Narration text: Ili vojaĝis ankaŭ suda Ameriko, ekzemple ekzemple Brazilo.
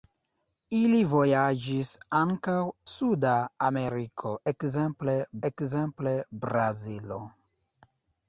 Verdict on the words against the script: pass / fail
pass